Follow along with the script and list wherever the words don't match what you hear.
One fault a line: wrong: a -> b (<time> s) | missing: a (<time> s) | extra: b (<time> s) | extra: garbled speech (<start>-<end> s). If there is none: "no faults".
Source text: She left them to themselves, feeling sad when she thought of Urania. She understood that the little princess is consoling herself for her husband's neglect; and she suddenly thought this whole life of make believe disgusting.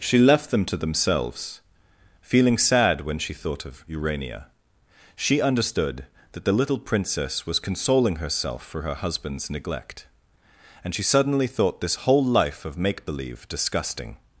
wrong: is -> was (7.5 s)